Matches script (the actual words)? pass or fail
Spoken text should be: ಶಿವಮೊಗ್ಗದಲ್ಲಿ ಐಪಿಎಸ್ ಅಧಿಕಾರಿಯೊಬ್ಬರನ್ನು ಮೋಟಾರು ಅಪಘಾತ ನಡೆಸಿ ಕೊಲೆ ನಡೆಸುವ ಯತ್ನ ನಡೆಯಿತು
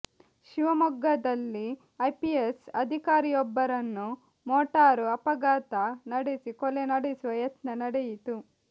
pass